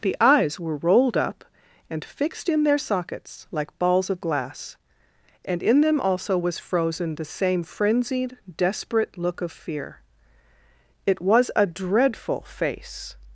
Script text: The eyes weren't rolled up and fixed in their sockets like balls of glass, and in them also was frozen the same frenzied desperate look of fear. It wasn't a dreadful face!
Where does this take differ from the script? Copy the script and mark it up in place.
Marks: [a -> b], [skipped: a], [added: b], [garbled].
The eyes [weren't -> were] rolled up and fixed in their sockets like balls of glass, and in them also was frozen the same frenzied desperate look of fear. It [wasn't -> was] a dreadful face!